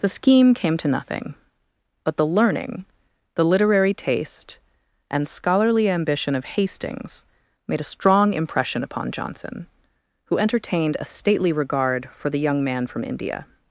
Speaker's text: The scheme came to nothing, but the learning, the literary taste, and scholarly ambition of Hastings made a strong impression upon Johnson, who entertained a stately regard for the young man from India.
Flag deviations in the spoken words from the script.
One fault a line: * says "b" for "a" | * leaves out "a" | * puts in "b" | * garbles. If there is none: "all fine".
all fine